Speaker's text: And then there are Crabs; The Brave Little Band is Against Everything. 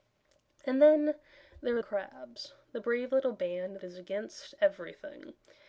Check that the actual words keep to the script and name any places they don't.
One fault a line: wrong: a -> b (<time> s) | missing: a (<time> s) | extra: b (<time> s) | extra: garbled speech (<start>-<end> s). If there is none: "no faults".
no faults